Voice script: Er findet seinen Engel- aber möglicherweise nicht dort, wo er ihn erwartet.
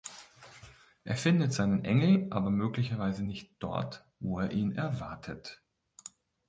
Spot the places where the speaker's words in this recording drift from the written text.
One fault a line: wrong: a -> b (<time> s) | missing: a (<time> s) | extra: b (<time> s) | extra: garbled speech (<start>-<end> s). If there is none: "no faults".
no faults